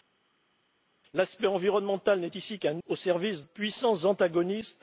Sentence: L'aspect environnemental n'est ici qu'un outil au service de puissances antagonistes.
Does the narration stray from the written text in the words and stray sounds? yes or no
yes